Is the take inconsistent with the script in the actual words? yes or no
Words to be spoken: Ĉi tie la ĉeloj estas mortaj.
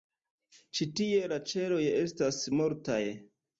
no